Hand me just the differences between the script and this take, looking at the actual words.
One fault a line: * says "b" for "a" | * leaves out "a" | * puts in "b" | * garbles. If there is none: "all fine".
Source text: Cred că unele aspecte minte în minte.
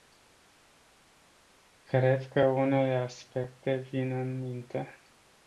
* says "vin" for "minte"